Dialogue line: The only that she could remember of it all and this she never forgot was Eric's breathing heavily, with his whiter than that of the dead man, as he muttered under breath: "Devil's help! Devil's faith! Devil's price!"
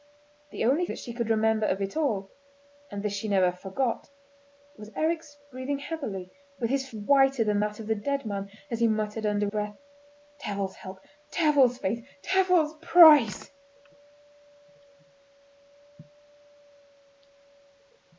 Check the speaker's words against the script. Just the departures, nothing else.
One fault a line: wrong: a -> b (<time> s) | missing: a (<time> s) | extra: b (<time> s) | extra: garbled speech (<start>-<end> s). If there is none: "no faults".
no faults